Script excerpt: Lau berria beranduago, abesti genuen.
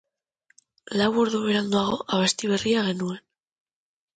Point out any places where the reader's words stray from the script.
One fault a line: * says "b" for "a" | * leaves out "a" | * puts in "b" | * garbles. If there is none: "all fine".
* says "ordu" for "berria"
* puts in "berria"